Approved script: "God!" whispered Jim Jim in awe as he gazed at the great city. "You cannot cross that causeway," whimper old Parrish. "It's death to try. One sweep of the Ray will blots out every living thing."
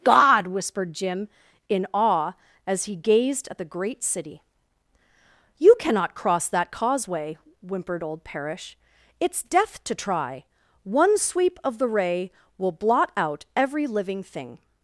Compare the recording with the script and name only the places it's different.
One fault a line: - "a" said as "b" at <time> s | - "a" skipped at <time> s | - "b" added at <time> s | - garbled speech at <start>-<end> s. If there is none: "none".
- "Jim" skipped at 1.3 s
- "whimper" said as "whimpered" at 7.6 s
- "blots" said as "blot" at 12.7 s